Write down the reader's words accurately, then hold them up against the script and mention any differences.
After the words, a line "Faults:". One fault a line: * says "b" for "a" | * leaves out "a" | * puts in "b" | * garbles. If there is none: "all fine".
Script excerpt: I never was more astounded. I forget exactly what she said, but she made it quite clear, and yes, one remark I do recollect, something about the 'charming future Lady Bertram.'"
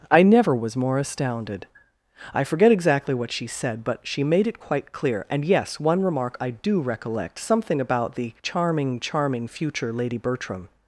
I never was more astounded. I forget exactly what she said, but she made it quite clear, and yes, one remark I do recollect, something about the 'charming charming future Lady Bertram.'"
Faults:
* puts in "charming"